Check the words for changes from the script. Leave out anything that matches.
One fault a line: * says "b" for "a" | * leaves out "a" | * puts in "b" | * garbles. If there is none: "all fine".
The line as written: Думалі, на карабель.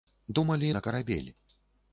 all fine